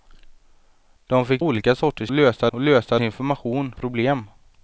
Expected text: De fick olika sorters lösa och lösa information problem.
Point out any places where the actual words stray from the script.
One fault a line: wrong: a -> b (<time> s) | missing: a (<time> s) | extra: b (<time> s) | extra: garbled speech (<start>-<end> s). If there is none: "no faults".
no faults